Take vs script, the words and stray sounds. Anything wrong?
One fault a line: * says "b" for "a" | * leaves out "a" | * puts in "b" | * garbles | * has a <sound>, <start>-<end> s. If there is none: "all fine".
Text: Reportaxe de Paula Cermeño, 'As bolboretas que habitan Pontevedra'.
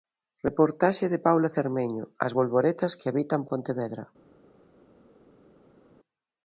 all fine